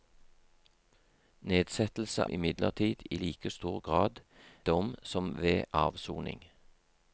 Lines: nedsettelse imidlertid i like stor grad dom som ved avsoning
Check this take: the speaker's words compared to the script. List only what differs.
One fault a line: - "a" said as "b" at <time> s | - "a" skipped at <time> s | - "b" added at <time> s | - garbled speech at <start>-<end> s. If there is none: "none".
none